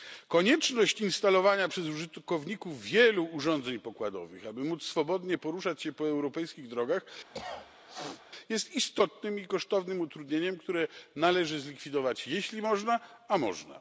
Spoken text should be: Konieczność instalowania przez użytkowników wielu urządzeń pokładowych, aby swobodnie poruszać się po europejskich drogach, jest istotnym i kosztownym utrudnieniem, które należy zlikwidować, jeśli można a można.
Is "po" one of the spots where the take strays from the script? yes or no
no